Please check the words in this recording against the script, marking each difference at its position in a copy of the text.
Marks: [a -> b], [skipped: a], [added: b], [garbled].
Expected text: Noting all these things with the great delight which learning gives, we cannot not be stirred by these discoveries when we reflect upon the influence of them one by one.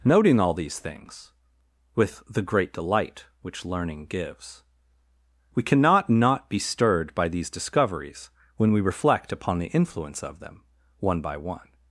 Noting all these things with the great delight which learning gives, we cannot not be stirred by these discoveries when we reflect upon the influence of them one by one.